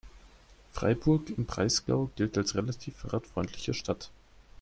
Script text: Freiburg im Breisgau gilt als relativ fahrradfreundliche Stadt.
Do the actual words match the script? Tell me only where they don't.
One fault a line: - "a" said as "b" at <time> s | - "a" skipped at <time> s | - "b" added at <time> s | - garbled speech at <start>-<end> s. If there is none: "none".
none